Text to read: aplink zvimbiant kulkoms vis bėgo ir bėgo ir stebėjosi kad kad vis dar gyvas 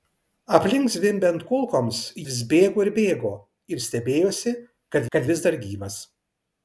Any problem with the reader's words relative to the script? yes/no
no